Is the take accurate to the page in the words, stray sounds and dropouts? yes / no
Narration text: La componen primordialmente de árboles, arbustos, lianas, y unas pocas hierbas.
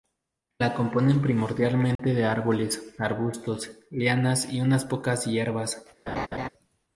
no